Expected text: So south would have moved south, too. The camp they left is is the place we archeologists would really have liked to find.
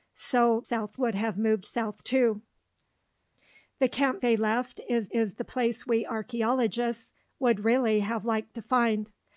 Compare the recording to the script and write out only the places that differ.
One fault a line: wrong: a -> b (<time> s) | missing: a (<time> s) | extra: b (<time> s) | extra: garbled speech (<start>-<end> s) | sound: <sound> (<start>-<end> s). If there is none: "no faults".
no faults